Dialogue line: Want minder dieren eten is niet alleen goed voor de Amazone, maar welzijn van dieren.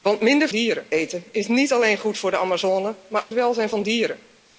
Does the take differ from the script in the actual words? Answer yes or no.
no